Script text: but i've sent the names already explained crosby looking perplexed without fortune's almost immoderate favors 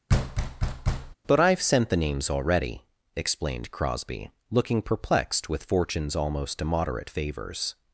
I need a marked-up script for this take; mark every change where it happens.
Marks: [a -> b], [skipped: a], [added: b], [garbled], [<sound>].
[thud] but i've sent the names already explained crosby looking perplexed [without -> with] fortune's almost immoderate favors